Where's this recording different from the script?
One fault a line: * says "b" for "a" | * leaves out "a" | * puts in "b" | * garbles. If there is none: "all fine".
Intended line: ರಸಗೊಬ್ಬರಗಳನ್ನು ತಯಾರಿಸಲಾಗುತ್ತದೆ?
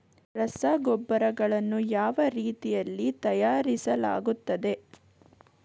* puts in "ಯಾವ ರೀತಿಯಲ್ಲಿ"